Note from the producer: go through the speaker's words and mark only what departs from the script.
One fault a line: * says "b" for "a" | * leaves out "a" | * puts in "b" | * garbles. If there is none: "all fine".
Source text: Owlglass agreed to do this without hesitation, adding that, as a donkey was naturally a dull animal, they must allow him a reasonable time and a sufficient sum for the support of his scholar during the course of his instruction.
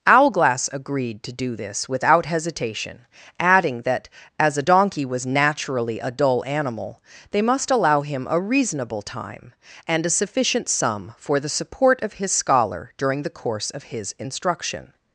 all fine